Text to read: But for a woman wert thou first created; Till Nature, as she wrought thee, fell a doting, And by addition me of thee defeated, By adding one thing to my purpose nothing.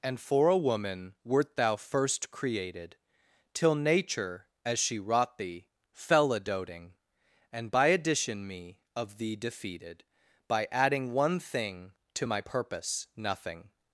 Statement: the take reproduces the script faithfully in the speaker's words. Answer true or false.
false